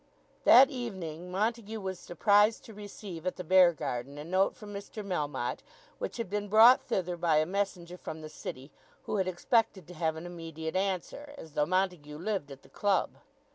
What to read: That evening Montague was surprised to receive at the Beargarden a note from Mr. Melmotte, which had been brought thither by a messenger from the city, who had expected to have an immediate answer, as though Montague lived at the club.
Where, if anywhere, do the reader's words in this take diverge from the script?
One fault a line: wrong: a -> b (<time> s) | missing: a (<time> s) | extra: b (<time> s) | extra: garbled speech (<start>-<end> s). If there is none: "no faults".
no faults